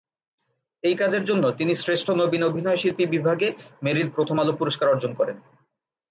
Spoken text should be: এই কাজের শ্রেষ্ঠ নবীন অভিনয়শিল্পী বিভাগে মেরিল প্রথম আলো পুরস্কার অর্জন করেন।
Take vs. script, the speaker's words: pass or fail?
fail